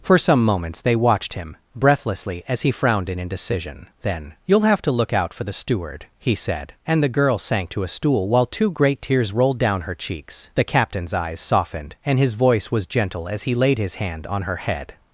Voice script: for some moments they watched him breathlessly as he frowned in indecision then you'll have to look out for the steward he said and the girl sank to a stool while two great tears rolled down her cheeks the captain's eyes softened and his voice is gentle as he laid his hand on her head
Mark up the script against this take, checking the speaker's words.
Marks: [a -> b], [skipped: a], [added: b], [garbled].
for some moments they watched him breathlessly as he frowned in indecision then you'll have to look out for the steward he said and the girl sank to a stool while two great tears rolled down her cheeks the captain's eyes softened and his voice [is -> was] gentle as he laid his hand on her head